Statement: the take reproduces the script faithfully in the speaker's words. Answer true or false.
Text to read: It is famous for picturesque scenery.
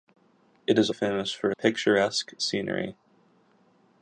true